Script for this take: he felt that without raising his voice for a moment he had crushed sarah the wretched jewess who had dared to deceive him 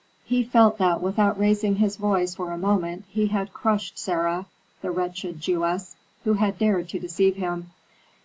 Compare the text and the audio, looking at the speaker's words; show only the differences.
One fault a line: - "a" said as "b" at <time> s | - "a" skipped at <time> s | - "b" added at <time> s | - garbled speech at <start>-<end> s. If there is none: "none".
none